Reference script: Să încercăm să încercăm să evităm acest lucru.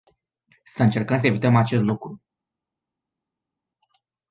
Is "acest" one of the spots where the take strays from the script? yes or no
no